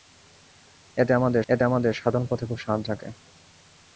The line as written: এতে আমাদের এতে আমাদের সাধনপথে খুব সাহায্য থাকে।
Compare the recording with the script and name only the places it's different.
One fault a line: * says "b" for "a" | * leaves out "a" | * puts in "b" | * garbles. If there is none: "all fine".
all fine